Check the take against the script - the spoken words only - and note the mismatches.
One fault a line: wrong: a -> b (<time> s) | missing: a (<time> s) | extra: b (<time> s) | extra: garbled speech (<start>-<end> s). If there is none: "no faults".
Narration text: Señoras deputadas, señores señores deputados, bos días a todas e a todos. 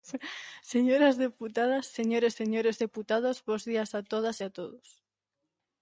no faults